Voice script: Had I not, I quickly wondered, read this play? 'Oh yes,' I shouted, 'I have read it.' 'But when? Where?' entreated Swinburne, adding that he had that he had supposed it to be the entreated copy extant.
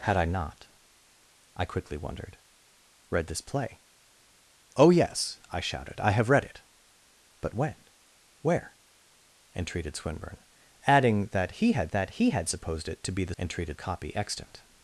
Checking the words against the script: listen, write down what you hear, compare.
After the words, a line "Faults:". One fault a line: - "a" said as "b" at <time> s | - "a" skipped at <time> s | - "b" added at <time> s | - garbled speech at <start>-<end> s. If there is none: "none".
Had I not, I quickly wondered, read this play? 'Oh yes,' I shouted, 'I have read it.' 'But when? Where?' entreated Swinburne, adding that he had that he had supposed it to be the entreated copy extant.
Faults:
none